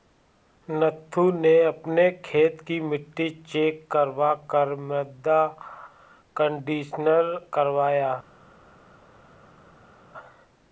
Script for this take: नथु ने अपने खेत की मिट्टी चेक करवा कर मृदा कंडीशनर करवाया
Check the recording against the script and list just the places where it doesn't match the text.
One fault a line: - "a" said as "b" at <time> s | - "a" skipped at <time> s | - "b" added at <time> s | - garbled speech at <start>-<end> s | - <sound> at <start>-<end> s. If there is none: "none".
none